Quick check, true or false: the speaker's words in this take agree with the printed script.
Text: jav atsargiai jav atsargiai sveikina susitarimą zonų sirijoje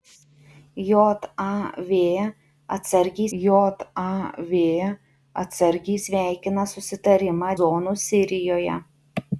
true